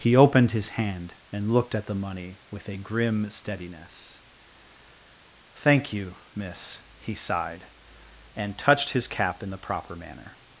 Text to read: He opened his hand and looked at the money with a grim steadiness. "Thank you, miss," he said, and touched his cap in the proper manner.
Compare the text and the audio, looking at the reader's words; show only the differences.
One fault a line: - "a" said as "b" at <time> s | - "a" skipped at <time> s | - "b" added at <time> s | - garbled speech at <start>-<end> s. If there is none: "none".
- "said" said as "sighed" at 7.1 s